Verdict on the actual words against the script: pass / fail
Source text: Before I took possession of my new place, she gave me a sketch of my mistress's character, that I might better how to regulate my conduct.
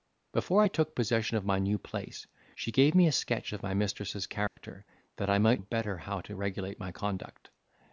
pass